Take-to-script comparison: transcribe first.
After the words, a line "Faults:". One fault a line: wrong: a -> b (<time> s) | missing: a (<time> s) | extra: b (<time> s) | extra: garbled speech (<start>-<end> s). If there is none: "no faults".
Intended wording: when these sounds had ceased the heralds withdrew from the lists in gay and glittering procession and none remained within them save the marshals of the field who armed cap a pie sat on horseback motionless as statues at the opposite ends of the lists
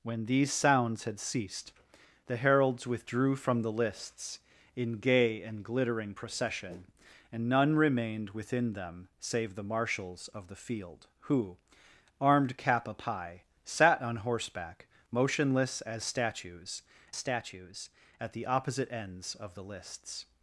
when these sounds had ceased the heralds withdrew from the lists in gay and glittering procession and none remained within them save the marshals of the field who armed cap a pie sat on horseback motionless as statues statues at the opposite ends of the lists
Faults:
extra: statues (17.2 s)